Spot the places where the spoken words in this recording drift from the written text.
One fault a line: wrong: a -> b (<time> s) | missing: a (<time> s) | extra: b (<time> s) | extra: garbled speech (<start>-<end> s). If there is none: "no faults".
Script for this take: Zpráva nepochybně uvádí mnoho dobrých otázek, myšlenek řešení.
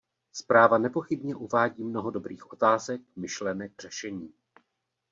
no faults